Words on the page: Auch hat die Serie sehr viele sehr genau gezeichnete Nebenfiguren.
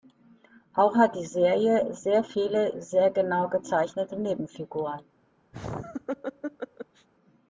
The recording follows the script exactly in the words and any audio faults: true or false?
false